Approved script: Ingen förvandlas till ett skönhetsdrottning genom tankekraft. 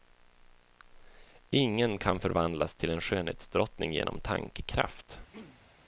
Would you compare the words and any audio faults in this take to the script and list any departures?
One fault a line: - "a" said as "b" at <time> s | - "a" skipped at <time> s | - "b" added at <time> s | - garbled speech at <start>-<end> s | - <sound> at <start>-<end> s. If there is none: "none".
- "kan" added at 2.0 s
- "ett" said as "en" at 2.9 s
- throat clearing at 5.3-5.7 s